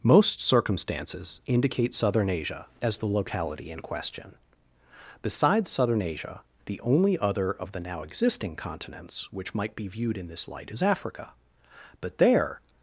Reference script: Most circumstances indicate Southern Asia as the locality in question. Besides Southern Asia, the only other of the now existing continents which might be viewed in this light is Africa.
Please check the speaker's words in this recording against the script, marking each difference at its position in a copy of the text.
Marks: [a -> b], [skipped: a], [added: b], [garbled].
Most circumstances indicate Southern Asia as the locality in question. Besides Southern Asia, the only other of the now existing continents which might be viewed in this light is Africa. [added: But there]